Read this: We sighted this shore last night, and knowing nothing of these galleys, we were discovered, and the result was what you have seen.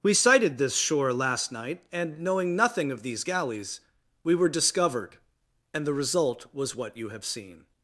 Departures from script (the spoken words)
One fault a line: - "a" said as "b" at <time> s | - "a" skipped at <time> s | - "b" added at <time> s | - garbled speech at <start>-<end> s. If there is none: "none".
none